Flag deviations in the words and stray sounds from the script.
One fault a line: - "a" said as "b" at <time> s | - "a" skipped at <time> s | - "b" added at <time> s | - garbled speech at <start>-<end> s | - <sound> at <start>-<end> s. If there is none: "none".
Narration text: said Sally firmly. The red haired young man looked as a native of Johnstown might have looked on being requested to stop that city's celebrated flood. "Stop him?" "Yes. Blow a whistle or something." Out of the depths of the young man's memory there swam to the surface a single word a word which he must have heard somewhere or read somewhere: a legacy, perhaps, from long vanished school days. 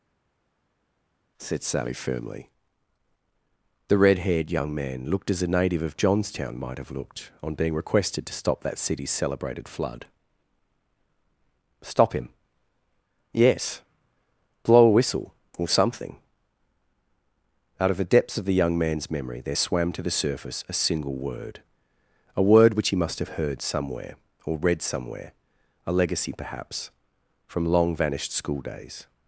none